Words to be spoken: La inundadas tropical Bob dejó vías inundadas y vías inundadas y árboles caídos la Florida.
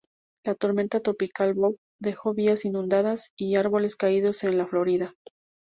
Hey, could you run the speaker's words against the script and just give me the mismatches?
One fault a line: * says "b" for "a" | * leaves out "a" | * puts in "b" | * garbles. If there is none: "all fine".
* says "tormenta" for "inundadas"
* leaves out "vías inundadas y"
* puts in "en"